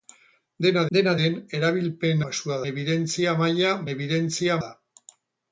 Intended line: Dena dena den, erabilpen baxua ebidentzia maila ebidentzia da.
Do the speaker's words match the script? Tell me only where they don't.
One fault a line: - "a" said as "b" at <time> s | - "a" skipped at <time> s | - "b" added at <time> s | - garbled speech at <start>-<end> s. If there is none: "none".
none